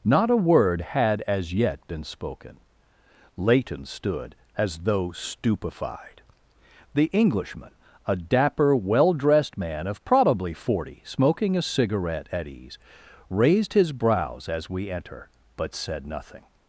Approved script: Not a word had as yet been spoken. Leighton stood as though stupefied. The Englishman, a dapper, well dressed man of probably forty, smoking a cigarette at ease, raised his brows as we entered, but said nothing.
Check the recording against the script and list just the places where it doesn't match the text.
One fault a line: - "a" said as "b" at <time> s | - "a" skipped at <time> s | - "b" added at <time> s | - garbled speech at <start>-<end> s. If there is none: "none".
- "entered" said as "enter" at 14.9 s